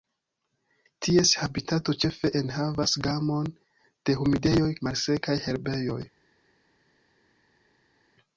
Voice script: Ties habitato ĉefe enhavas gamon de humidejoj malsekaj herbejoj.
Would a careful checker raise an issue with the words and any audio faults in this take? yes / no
no